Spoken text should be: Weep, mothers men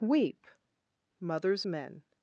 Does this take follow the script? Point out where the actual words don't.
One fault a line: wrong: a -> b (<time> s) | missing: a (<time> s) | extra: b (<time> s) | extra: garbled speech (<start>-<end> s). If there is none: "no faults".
no faults